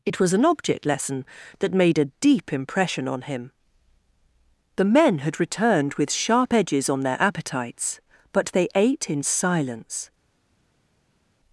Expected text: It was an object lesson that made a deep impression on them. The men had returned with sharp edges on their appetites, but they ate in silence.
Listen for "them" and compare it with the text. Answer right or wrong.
wrong